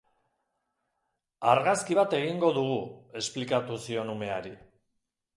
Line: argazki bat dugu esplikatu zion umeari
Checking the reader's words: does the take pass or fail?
fail